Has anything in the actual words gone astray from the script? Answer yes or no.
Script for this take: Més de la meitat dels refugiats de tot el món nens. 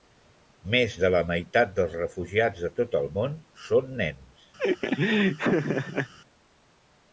yes